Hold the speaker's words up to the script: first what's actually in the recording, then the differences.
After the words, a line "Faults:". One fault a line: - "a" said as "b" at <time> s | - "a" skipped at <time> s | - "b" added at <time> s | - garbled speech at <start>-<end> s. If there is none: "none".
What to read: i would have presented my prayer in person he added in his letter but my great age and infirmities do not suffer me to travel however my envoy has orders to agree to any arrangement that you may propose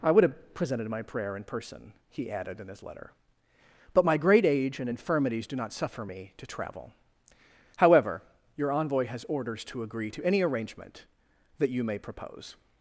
i would have presented my prayer in person he added in his letter but my great age and infirmities do not suffer me to travel however your envoy has orders to agree to any arrangement that you may propose
Faults:
- "my" said as "your" at 8.6 s